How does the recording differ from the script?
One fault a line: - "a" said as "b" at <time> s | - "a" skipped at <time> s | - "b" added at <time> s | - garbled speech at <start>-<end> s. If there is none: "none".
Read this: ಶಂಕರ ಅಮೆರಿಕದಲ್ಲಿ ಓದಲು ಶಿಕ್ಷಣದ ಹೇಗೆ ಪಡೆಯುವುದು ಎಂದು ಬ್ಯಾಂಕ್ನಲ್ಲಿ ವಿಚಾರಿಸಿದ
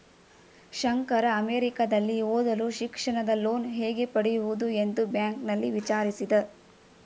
- "ಲೋನ್" added at 3.4 s